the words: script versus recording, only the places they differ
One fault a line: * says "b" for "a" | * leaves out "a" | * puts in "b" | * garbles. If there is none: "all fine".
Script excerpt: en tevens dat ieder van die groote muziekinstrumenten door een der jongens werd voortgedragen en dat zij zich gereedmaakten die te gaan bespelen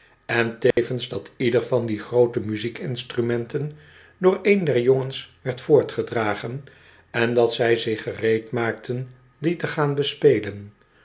all fine